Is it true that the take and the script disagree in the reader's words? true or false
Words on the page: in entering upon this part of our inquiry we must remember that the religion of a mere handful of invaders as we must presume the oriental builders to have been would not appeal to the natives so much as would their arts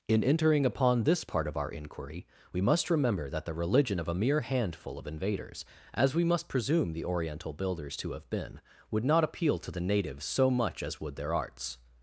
false